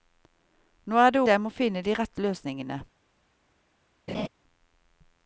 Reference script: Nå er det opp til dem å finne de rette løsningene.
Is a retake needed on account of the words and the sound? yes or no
yes